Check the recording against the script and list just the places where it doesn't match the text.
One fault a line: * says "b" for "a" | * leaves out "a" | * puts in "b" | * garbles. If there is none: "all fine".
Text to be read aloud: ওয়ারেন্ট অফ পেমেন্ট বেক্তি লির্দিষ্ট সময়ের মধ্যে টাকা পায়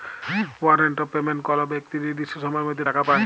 * puts in "কল"